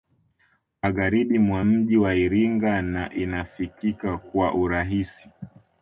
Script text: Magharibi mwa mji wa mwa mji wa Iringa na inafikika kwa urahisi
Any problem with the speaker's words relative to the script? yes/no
yes